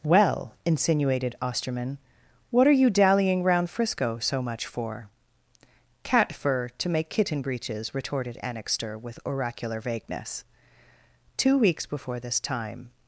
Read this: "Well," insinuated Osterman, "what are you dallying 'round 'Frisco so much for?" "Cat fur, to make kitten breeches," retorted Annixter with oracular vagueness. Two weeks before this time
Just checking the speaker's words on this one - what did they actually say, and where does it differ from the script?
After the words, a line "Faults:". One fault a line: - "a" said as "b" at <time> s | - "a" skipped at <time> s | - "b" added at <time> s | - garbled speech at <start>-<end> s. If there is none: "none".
"Well," insinuated Osterman, "what are you dallying 'round 'Frisco so much for?" "Cat fur, to make kitten breeches," retorted Annixter with oracular vagueness. Two weeks before this time
Faults:
none